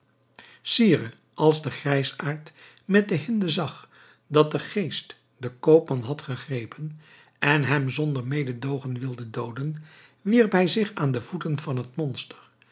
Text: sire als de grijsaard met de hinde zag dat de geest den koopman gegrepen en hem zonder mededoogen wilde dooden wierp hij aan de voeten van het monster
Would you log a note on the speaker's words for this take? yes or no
yes